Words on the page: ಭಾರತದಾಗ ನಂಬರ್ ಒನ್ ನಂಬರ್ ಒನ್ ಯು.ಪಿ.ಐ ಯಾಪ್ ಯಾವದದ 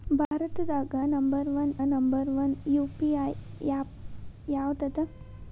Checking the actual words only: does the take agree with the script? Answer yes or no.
yes